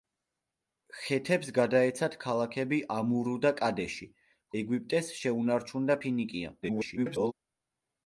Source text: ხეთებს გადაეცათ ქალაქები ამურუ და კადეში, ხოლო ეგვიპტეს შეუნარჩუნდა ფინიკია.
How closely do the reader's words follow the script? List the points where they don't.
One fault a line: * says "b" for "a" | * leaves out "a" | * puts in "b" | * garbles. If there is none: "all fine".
* leaves out "ხოლო"
* garbles